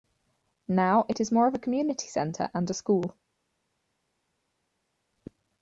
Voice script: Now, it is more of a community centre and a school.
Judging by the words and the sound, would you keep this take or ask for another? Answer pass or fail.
pass